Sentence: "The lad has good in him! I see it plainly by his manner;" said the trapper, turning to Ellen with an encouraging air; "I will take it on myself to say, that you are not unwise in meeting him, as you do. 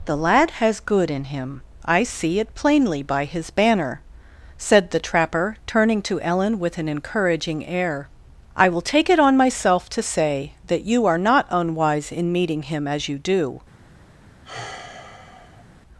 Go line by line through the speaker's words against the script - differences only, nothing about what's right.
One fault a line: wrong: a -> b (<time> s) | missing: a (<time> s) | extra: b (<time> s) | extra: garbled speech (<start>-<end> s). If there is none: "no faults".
wrong: manner -> banner (3.5 s)